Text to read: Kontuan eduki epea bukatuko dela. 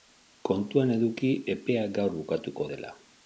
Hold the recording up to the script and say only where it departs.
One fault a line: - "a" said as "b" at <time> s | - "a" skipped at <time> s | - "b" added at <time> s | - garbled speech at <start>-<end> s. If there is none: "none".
- "gaur" added at 2.0 s